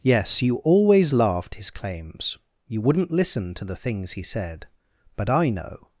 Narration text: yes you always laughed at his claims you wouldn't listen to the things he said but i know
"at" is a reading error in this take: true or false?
true